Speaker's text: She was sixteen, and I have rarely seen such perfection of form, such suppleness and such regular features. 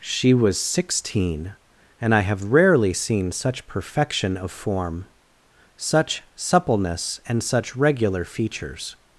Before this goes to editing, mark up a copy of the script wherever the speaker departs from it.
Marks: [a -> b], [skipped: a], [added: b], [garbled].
She was sixteen, and I have rarely seen such perfection of form, such suppleness and such regular features.